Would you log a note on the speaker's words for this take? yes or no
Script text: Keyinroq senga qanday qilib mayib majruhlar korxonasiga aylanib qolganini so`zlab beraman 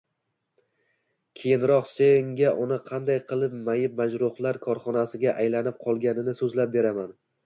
yes